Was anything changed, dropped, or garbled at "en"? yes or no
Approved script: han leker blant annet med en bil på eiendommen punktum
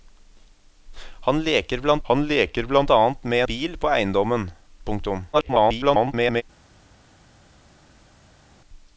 yes